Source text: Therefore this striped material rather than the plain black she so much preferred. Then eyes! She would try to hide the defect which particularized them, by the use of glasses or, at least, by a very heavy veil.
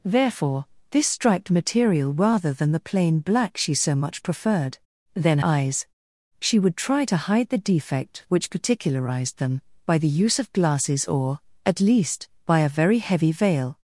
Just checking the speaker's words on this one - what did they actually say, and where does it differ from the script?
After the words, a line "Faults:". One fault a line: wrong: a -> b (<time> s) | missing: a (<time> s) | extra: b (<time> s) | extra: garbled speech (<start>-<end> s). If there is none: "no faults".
Therefore this striped material rather than the plain black she so much preferred. Then eyes! She would try to hide the defect which particularized them, by the use of glasses or, at least, by a very heavy veil.
Faults:
no faults